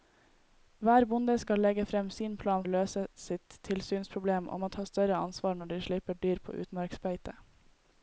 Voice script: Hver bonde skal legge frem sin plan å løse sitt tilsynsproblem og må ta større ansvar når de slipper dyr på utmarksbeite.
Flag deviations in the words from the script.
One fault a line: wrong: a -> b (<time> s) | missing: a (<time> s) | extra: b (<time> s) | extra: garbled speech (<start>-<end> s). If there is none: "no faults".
no faults